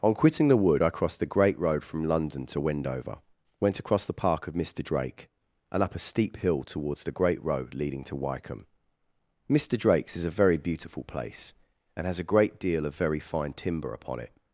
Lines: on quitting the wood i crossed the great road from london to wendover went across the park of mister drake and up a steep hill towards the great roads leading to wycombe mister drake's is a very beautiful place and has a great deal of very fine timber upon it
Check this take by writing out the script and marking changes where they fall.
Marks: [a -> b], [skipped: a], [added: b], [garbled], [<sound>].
on quitting the wood i crossed the great road from london to wendover went across the park of mister drake and up a steep hill towards the great [roads -> road] leading to wycombe mister drake's is a very beautiful place and has a great deal of very fine timber upon it